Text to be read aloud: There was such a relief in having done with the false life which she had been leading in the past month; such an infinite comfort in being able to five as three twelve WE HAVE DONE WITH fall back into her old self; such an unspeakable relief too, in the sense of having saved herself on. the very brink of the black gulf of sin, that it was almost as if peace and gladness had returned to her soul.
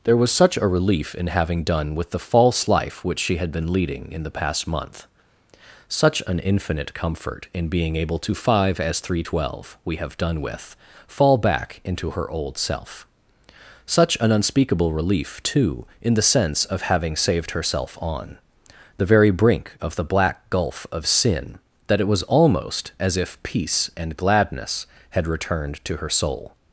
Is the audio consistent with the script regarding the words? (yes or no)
yes